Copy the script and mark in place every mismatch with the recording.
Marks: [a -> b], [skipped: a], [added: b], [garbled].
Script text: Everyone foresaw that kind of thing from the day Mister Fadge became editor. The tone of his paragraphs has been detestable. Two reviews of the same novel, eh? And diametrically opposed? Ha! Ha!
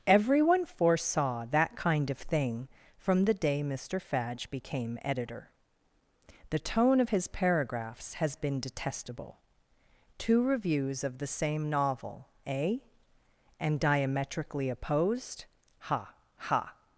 Everyone foresaw that kind of thing from the day Mister Fadge became editor. The tone of his paragraphs has been detestable. Two reviews of the same novel, eh? And diametrically opposed? Ha! Ha!